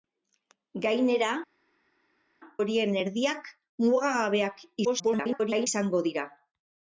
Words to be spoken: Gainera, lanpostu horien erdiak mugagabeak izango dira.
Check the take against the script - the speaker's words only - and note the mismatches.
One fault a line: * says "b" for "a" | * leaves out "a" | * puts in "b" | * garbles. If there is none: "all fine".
* leaves out "lanpostu"
* garbles